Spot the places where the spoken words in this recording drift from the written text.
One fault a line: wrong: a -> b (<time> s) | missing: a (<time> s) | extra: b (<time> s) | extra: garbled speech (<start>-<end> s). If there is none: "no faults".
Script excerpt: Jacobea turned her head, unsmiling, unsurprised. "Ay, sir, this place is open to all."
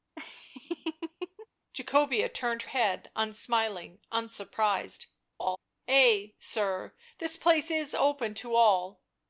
missing: her (2.6 s)